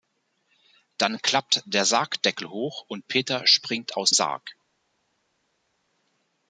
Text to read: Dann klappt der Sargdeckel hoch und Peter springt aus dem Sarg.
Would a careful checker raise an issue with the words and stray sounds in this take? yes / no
yes